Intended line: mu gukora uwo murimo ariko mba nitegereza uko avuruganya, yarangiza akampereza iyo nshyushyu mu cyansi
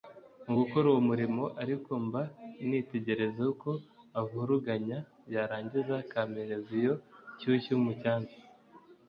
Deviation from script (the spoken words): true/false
false